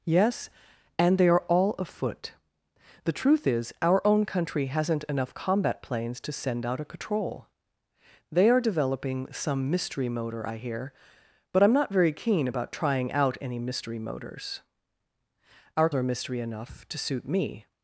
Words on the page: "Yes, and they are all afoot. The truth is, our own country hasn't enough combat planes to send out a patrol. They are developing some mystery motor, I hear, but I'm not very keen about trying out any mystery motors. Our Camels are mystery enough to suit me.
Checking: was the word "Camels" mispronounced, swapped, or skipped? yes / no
yes